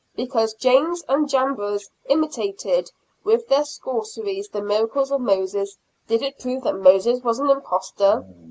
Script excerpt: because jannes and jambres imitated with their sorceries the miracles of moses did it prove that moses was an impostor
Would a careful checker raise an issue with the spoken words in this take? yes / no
no